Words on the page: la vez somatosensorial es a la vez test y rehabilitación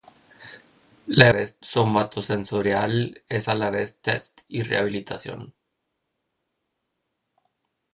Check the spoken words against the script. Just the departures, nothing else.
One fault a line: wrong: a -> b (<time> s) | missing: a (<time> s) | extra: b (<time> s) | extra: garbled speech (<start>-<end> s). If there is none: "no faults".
no faults